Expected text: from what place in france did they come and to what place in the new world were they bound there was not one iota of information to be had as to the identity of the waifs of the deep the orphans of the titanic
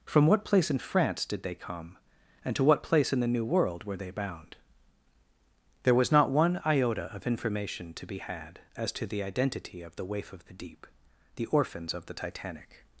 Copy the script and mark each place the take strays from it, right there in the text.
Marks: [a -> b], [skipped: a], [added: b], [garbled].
from what place in france did they come and to what place in the new world were they bound there was not one iota of information to be had as to the identity of the [waifs -> waif] of the deep the orphans of the titanic